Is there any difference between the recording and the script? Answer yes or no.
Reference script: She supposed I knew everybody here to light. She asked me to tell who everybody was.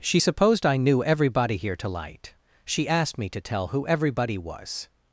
no